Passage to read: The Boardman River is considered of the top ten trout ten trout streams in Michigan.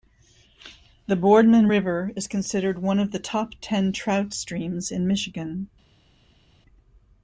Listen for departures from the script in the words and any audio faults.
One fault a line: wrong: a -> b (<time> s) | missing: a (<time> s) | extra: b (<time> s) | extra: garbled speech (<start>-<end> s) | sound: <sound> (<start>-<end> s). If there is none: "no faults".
extra: one (2.8 s)
missing: ten trout (4.3 s)